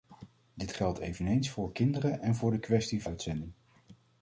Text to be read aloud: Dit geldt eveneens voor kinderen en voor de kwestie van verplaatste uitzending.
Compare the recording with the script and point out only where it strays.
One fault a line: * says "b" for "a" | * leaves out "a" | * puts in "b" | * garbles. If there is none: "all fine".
* leaves out "van verplaatste"